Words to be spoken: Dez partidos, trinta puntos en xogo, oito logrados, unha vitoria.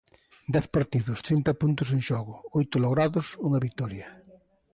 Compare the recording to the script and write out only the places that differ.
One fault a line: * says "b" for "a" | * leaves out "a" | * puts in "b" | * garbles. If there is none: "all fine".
all fine